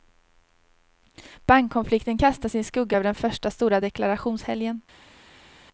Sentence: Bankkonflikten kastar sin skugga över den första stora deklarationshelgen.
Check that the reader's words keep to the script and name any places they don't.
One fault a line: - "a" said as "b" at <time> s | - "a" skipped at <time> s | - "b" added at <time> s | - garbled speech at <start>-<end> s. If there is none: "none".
none